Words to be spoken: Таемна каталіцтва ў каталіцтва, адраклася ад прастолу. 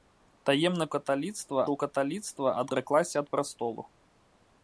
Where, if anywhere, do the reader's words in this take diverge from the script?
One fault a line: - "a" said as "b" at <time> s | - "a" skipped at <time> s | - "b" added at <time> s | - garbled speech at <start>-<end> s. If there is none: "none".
none